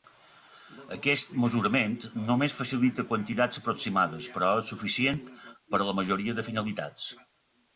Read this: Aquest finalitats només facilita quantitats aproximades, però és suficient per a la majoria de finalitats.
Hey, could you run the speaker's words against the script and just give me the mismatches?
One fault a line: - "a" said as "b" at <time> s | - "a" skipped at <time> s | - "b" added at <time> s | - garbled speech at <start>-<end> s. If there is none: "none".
- "finalitats" said as "mesurament" at 1.4 s